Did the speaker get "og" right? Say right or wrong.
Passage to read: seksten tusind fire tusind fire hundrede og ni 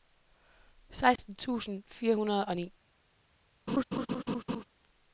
right